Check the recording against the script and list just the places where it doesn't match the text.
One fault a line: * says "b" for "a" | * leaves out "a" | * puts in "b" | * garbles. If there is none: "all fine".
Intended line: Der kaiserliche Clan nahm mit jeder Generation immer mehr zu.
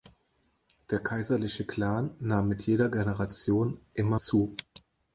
* leaves out "mehr"